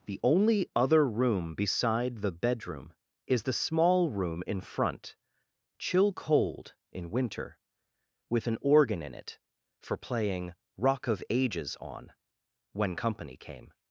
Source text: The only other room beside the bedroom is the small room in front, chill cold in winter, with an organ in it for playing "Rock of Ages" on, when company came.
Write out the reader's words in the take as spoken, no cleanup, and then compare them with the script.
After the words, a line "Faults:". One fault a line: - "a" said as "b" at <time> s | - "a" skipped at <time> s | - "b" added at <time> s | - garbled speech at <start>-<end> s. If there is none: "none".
The only other room beside the bedroom is the small room in front, chill cold in winter, with an organ in it for playing "Rock of Ages" on, when company came.
Faults:
none